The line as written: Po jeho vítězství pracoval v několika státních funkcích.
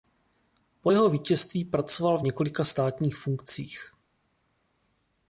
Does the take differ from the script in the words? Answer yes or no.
no